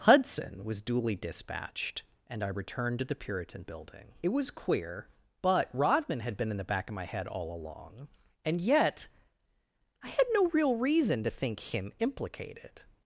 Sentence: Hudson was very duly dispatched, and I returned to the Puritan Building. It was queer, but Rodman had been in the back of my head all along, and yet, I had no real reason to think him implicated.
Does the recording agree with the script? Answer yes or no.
no